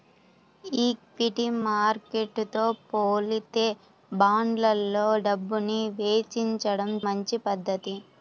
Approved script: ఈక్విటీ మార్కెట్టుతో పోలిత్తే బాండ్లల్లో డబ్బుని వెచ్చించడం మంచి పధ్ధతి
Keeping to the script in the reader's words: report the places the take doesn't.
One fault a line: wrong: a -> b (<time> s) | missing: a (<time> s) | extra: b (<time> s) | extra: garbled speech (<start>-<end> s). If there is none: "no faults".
no faults